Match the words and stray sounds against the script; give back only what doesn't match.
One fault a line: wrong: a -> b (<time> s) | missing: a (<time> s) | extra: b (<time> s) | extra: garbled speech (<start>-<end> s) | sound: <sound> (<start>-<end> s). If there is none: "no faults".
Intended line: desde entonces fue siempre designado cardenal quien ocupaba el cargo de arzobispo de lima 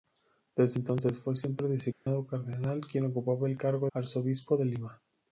sound: dropout (1.9-2.1 s)
missing: de (3.9 s)